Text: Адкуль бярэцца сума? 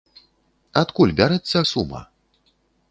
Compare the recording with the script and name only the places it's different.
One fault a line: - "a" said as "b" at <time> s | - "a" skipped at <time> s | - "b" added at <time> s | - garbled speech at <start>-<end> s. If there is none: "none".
none